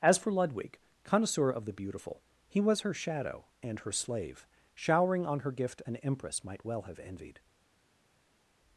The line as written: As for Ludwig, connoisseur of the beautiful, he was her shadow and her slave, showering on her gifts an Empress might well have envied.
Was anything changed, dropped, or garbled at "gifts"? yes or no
yes